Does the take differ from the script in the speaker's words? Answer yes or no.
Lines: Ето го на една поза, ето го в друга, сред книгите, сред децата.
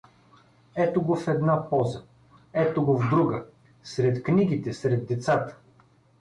yes